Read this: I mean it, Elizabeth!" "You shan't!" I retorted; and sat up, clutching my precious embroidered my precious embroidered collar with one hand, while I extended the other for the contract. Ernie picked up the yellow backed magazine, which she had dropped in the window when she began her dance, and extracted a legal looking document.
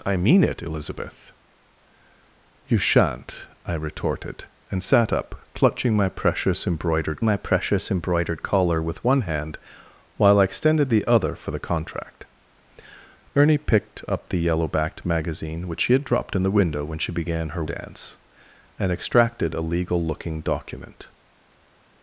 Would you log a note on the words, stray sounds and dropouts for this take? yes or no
no